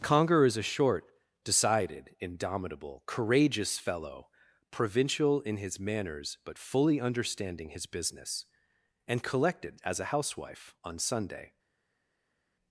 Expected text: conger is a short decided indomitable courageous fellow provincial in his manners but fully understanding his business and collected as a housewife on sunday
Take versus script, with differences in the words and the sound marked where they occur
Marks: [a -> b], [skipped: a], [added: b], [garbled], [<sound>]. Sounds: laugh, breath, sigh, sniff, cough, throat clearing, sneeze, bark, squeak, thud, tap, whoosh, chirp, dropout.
conger is a short decided indomitable courageous fellow provincial in his manners but fully understanding his business and collected as a housewife on sunday